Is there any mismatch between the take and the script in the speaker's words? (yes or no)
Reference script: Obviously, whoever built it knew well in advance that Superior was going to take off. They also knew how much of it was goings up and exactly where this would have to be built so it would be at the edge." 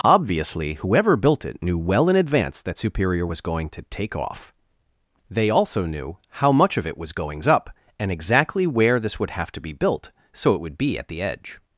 no